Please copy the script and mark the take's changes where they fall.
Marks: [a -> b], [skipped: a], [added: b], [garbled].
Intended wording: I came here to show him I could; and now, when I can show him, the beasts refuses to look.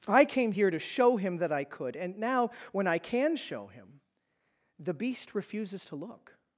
I came here to show him [added: that] I could; and now, when I can show him, the [beasts -> beast] refuses to look.